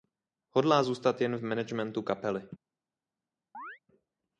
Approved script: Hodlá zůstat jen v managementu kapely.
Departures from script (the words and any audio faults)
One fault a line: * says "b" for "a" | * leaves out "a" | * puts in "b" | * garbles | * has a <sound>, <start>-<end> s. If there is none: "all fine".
* has a chirp, 3.5-3.8 s